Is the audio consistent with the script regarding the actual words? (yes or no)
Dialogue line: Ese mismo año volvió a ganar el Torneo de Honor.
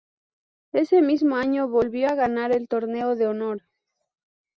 yes